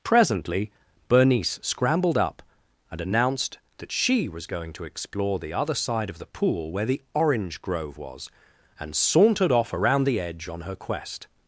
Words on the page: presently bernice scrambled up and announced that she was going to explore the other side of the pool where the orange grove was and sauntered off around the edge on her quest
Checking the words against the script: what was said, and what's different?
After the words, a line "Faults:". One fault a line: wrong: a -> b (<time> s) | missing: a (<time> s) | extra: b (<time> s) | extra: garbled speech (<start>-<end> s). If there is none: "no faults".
presently bernice scrambled up and announced that she was going to explore the other side of the pool where the orange grove was and sauntered off around the edge on her quest
Faults:
no faults